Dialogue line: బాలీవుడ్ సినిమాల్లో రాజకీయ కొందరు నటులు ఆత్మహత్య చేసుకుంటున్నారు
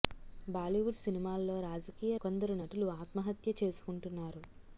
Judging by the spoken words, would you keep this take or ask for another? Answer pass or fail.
pass